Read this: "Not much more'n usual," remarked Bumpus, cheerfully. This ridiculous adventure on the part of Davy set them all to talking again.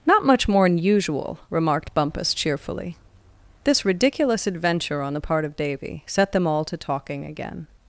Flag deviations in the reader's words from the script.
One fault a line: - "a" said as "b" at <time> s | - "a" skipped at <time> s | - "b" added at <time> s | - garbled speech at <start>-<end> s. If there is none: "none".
none